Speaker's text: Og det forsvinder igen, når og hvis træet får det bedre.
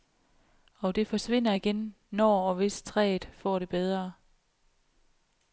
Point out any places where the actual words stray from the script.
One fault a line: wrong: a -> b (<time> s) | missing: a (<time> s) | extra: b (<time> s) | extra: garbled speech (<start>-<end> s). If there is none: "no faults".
no faults